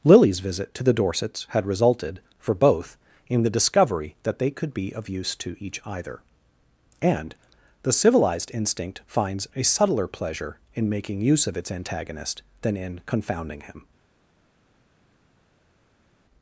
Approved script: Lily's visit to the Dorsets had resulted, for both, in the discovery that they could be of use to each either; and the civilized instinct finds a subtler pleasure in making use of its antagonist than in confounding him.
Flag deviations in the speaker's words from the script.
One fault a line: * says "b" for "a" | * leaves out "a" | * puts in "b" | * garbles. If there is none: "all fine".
all fine